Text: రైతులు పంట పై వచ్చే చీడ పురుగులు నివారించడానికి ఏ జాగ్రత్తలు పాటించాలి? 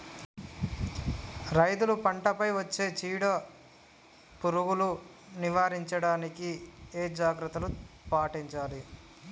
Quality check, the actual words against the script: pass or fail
pass